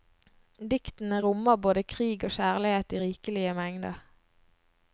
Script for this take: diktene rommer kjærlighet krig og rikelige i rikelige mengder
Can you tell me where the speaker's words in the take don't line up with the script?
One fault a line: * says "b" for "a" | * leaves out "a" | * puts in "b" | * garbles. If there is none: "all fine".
* says "både" for "kjærlighet"
* says "kjærlighet" for "rikelige"